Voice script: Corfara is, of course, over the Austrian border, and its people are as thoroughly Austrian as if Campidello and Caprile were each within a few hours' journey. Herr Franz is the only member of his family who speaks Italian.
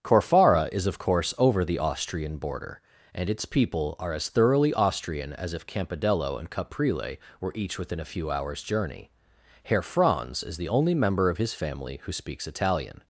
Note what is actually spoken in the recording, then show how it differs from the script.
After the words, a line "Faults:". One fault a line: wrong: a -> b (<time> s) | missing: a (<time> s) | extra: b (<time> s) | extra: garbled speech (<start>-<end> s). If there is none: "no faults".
Corfara is, of course, over the Austrian border, and its people are as thoroughly Austrian as if Campidello and Caprile were each within a few hours' journey. Herr Franz is the only member of his family who speaks Italian.
Faults:
no faults